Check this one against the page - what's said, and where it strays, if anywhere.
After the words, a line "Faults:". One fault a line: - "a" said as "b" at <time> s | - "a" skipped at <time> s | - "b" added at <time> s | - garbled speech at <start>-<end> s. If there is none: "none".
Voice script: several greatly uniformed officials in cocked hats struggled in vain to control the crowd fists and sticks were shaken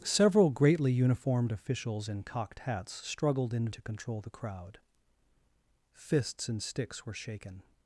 several greatly uniformed officials in cocked hats struggled in to control the crowd fists and sticks were shaken
Faults:
- "vain" skipped at 3.7 s